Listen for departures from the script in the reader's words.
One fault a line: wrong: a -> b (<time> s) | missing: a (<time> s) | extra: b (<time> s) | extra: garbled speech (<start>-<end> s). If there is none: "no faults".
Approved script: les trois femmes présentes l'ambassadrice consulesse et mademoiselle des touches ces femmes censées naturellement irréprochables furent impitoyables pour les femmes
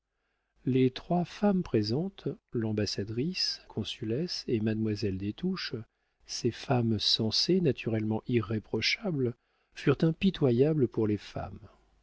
no faults